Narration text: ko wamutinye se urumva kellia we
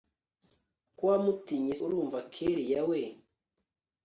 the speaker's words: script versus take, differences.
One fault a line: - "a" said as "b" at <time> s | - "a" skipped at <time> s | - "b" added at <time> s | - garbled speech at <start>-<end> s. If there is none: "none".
- "se" skipped at 1.8 s